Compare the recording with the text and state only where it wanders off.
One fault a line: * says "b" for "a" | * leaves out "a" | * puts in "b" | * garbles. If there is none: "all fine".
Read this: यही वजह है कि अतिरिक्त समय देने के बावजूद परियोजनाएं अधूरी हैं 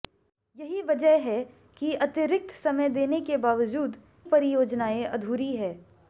all fine